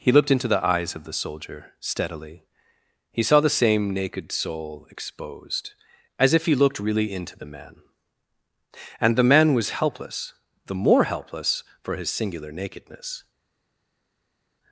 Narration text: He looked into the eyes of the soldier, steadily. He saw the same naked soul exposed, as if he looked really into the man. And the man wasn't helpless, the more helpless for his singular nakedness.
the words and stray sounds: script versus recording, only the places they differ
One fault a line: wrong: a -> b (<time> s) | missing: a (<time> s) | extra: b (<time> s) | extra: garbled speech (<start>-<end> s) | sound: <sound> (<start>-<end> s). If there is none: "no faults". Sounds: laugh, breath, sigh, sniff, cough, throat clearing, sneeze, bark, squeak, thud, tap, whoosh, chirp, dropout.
wrong: wasn't -> was (9.5 s)